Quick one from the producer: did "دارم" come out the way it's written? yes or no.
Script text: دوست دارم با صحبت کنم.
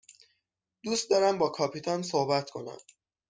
yes